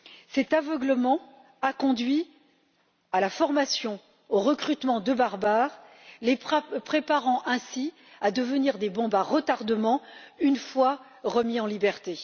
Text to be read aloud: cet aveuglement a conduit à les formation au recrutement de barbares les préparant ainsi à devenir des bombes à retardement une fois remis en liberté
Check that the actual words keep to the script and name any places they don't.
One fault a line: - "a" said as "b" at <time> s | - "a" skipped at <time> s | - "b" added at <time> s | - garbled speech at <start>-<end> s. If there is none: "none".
- "les" said as "la" at 3.2 s